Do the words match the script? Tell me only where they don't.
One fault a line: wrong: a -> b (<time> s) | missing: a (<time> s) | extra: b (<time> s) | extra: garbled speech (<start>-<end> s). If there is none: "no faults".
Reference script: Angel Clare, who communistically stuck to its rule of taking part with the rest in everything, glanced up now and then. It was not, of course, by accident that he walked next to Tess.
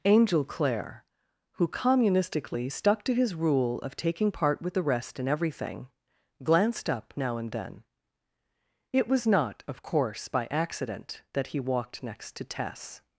wrong: its -> his (3.1 s)